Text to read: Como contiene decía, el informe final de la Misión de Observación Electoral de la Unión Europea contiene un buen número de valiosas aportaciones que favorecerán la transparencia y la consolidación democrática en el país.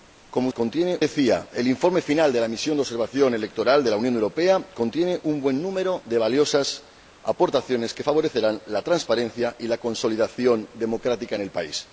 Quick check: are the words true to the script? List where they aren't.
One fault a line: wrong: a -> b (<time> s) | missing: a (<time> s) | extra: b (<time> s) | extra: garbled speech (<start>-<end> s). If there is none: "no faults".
no faults